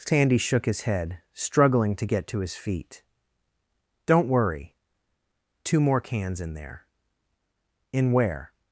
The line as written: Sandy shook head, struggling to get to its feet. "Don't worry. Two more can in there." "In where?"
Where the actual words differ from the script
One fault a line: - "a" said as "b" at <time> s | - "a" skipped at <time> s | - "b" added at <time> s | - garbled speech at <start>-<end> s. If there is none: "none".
- "his" added at 0.7 s
- "its" said as "his" at 2.4 s
- "can" said as "cans" at 6.0 s